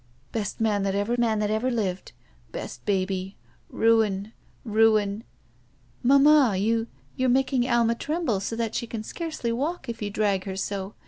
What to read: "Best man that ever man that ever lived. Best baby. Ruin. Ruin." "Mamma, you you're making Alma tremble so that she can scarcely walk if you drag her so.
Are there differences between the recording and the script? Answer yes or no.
no